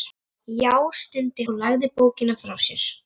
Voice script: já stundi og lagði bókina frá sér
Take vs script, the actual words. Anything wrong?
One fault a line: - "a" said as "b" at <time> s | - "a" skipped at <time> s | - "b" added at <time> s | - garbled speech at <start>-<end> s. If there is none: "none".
none